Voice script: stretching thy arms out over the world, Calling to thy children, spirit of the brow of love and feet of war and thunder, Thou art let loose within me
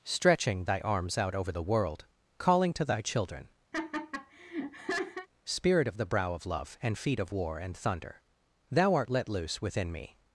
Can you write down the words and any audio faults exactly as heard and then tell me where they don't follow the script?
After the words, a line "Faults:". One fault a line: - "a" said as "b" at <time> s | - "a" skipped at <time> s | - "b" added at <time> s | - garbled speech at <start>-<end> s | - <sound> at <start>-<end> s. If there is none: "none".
stretching thy arms out over the world, Calling to thy children, spirit of the brow of love and feet of war and thunder, Thou art let loose within me
Faults:
- laugh at 3.7-5.3 s